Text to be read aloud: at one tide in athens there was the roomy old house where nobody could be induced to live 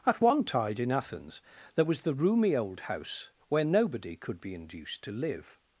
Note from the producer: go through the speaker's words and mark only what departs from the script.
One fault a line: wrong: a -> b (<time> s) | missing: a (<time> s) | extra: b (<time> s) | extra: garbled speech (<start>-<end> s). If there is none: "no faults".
no faults